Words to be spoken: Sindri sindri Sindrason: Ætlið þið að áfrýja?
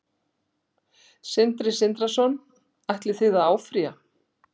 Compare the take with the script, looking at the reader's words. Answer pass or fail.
fail